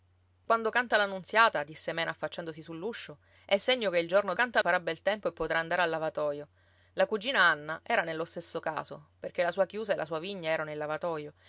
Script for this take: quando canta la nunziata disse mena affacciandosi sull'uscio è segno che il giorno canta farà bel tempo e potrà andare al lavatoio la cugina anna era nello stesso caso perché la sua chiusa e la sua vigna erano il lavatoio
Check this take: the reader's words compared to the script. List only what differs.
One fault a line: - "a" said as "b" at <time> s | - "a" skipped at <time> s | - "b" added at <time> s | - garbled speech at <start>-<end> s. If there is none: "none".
none